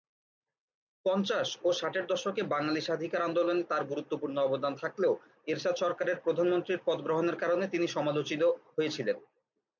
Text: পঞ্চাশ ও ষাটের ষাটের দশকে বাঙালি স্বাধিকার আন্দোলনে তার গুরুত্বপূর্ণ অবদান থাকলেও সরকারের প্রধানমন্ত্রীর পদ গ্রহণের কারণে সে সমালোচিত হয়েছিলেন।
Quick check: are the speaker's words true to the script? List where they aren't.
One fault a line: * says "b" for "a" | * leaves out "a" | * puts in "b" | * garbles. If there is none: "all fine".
* leaves out "ষাটের"
* puts in "এরশাদ"
* says "তিনি" for "সে"